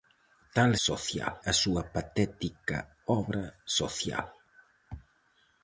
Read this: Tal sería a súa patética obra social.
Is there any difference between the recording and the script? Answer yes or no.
yes